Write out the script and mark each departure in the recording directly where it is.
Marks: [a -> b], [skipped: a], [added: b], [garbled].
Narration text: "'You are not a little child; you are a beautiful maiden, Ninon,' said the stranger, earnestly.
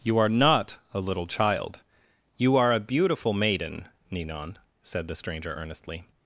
"'You are not a little child; you are a beautiful maiden, Ninon,' said the stranger, earnestly.